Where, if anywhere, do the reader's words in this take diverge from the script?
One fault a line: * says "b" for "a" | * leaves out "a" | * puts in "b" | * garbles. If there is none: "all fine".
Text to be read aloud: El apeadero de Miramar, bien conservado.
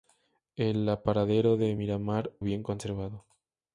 all fine